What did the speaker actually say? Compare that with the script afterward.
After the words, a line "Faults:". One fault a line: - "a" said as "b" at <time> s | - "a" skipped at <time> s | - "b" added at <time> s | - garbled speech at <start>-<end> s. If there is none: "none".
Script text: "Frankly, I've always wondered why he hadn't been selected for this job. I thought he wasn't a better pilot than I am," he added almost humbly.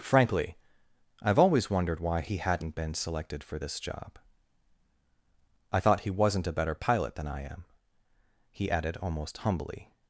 "Frankly, I've always wondered why he hadn't been selected for this job. I thought he wasn't a better pilot than I am," he added almost humbly.
Faults:
none